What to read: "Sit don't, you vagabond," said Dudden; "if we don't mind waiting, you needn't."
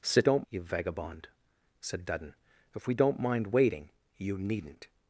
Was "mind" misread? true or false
false